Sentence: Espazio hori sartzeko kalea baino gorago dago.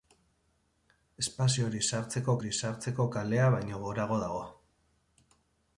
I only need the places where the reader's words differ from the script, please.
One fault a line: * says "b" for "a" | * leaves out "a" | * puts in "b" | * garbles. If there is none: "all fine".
* puts in "hori sartzeko"